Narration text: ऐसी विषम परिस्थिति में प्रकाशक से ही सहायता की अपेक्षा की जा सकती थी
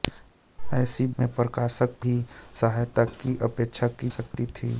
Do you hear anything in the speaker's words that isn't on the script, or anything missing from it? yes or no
yes